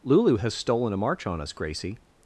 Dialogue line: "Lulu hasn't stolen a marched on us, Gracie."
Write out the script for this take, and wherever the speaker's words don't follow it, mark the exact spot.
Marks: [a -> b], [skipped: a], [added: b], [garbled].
"Lulu [hasn't -> has] stolen a [marched -> march] on us, Gracie."